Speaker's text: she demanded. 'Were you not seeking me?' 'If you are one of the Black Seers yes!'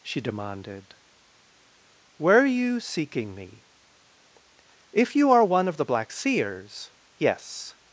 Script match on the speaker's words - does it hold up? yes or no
no